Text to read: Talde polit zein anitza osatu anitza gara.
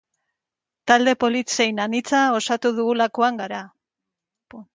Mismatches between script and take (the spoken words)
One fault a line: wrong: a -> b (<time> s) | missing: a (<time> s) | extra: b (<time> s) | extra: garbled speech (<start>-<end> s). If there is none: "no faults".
wrong: anitza -> dugulakoan (2.8 s)